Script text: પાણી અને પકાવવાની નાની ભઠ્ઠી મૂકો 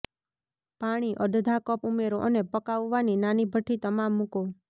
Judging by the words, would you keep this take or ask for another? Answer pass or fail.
fail